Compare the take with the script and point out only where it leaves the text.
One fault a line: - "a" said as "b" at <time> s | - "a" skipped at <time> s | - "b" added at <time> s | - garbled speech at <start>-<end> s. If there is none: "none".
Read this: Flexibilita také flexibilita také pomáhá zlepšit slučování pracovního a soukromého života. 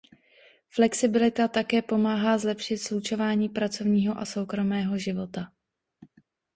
- "flexibilita také" skipped at 1.8 s